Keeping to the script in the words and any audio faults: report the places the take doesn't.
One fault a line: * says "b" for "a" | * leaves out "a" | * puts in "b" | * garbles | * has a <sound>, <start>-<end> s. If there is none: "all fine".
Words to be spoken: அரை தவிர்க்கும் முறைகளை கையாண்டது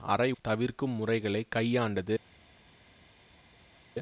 all fine